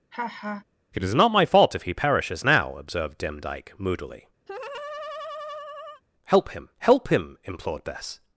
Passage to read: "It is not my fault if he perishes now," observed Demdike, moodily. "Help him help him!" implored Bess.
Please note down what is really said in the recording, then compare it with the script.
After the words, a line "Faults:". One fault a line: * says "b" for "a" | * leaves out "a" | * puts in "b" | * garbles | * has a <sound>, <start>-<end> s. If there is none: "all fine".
"It is not my fault if he perishes now," observed Demdike, moodily. "Help him help him!" implored Bess.
Faults:
* has a laugh, 0.1-0.6 s
* has a laugh, 4.5-6.0 s